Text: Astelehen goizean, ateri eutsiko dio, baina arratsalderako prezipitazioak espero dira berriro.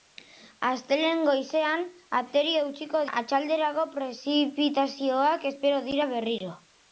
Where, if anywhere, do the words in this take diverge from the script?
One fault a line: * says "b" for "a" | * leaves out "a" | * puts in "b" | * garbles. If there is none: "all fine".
* leaves out "dio baina"